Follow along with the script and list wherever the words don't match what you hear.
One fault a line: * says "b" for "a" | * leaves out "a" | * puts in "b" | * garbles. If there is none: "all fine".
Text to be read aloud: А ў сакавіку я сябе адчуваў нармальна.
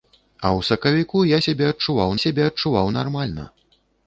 * puts in "сябе адчуваў"